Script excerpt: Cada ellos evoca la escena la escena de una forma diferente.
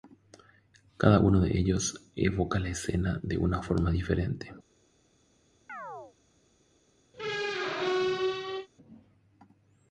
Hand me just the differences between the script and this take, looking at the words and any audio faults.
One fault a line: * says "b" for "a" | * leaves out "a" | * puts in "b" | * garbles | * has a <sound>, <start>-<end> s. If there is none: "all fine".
* puts in "uno de"
* leaves out "la escena"
* has a chirp, 5.7-6.2 s
* has a squeak, 7.1-8.7 s